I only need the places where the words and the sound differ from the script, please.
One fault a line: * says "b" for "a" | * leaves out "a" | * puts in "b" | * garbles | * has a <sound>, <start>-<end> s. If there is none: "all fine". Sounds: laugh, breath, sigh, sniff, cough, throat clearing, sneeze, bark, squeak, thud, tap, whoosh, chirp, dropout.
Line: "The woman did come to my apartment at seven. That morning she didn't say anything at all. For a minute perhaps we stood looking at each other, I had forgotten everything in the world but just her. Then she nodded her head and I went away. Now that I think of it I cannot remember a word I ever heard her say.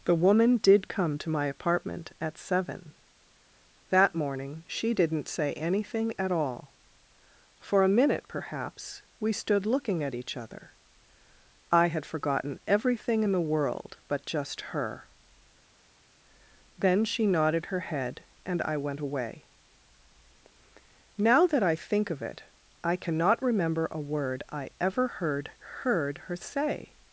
* puts in "heard"